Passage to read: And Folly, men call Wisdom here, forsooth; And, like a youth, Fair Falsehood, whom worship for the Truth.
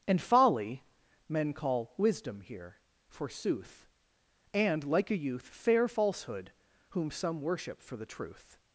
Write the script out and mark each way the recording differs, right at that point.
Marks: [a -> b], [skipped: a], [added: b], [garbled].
And Folly, men call Wisdom here, forsooth; And, like a youth, Fair Falsehood, whom [added: some] worship for the Truth.